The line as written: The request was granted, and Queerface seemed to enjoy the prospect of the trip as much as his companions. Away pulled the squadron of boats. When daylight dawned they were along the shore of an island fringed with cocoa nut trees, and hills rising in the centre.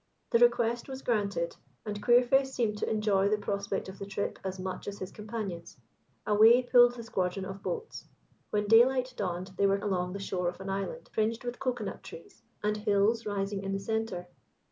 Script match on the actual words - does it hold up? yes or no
yes